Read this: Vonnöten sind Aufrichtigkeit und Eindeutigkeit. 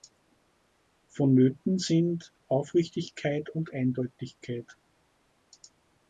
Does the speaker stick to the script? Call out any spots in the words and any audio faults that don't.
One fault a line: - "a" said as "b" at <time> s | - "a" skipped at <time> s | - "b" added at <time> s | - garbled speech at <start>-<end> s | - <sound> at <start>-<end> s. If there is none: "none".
none